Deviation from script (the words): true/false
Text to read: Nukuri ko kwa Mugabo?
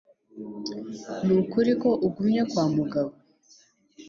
true